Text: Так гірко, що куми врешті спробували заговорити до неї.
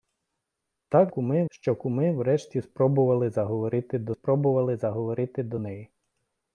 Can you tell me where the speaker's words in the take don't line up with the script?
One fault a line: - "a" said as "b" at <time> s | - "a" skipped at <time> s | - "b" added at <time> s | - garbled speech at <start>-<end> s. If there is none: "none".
- "гірко" said as "куми" at 1.1 s
- "спробували заговорити до" added at 4.1 s